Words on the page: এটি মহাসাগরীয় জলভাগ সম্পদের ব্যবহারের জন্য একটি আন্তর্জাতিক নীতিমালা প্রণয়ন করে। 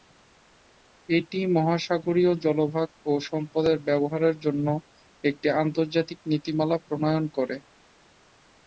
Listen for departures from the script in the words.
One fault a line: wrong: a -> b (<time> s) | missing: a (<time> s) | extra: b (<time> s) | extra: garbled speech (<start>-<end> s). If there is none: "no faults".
extra: ও (3.0 s)